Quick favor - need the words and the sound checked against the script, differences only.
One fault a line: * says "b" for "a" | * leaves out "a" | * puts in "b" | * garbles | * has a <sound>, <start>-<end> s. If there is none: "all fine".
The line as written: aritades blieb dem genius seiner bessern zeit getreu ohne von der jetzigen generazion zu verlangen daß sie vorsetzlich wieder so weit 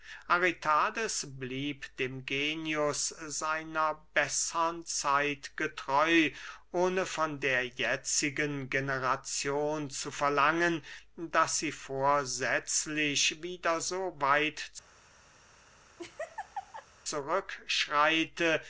* has a laugh, 16.0-16.9 s